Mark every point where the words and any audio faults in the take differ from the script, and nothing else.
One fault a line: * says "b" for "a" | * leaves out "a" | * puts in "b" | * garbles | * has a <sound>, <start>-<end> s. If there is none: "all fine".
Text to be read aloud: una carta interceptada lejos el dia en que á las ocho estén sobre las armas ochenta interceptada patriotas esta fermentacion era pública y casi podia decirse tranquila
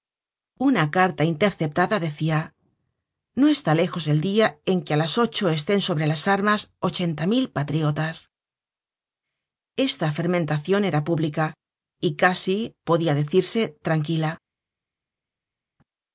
* puts in "decia no está"
* says "mil" for "interceptada"